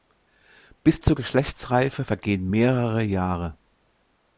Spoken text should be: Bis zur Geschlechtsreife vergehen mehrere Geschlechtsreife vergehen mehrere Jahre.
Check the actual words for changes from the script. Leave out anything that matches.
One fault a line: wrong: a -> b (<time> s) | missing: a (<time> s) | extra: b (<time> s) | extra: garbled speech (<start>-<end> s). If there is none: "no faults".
missing: Geschlechtsreife vergehen mehrere (3.0 s)